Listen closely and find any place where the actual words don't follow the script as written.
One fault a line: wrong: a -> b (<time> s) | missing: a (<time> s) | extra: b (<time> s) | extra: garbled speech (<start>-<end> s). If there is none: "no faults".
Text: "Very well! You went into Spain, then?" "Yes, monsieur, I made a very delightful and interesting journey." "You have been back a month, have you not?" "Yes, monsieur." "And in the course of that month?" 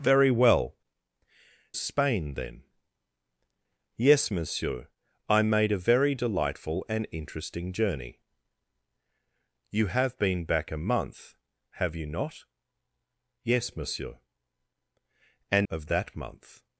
missing: You went into (0.8 s)
missing: in the course (15.7 s)